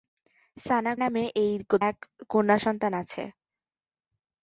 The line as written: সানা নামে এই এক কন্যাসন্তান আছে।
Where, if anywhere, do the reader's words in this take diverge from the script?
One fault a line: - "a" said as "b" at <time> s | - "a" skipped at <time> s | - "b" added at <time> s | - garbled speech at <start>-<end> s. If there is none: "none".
none